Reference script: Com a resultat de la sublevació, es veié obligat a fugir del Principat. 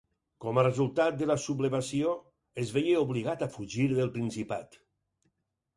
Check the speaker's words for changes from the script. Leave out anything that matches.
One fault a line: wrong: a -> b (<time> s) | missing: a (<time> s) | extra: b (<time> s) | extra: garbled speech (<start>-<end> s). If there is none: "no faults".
no faults